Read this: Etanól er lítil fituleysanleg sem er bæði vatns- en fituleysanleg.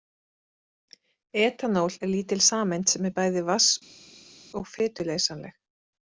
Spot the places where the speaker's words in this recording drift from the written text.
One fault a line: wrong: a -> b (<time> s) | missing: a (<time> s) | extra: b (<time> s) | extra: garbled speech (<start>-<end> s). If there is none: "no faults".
wrong: fituleysanleg -> sameind (2.5 s)
wrong: en -> og (4.6 s)